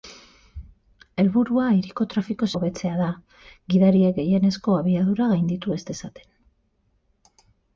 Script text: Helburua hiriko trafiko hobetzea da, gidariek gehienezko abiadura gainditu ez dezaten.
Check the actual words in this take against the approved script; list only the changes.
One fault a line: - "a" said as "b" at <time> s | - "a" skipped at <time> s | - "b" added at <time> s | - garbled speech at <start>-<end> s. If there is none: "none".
none